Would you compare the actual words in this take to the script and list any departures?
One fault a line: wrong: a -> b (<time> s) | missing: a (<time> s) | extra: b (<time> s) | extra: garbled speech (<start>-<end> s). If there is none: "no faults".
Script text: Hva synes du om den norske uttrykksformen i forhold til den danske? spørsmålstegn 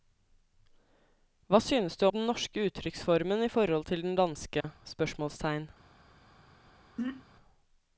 missing: om (2.1 s)